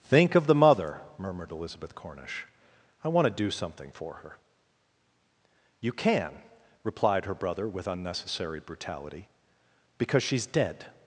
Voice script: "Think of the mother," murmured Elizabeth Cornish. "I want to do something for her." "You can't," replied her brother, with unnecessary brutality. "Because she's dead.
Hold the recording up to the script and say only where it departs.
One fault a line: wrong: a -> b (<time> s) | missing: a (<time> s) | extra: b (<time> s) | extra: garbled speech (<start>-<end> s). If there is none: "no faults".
wrong: can't -> can (5.9 s)